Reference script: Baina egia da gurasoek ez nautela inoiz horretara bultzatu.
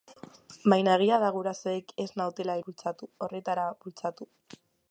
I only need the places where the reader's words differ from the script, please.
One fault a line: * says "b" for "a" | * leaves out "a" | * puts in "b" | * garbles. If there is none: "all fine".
* says "bultzatu" for "inoiz"